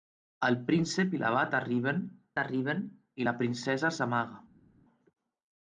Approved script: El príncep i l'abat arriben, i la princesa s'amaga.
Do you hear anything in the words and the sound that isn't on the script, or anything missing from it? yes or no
yes